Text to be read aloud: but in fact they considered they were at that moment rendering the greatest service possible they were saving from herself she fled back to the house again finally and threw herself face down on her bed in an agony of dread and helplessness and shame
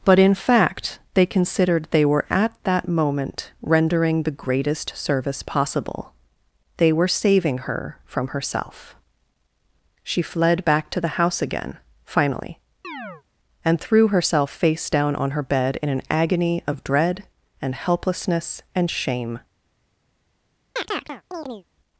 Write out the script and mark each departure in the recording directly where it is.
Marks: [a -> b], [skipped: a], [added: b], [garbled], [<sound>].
but in fact they considered they were at that moment rendering the greatest service possible they were saving [added: her] from herself she fled back to the house again finally [chirp] and threw herself face down on her bed in an agony of dread and helplessness and shame [chirp]